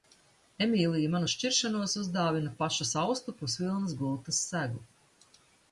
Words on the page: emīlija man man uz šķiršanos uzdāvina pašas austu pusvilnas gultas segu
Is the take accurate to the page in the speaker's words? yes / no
no